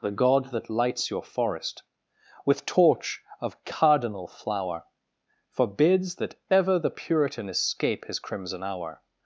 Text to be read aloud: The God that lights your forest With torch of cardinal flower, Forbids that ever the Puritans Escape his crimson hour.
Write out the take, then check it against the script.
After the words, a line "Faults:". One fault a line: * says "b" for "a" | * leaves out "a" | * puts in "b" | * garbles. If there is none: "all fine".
The God that lights your forest With torch of cardinal flower, Forbids that ever the Puritan Escape his crimson hour.
Faults:
* says "Puritan" for "Puritans"